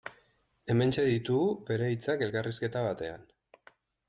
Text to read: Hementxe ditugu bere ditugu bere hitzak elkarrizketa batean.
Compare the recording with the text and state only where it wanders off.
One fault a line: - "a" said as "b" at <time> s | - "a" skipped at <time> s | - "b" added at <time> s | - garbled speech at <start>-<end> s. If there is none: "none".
- "ditugu bere" skipped at 1.9 s